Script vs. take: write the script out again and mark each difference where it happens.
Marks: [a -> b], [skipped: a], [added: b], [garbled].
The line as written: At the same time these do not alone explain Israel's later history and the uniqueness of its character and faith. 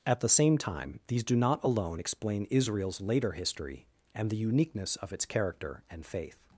At the same time these do not alone explain Israel's later history and the uniqueness of its character and faith.